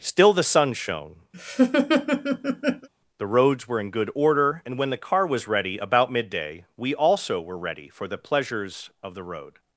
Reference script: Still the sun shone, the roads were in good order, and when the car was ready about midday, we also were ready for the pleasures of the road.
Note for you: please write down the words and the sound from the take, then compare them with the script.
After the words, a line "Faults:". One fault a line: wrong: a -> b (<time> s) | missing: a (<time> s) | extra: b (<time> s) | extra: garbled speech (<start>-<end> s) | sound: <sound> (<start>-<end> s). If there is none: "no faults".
Still the sun shone, the roads were in good order, and when the car was ready about midday, we also were ready for the pleasures of the road.
Faults:
sound: laugh (1.3-2.9 s)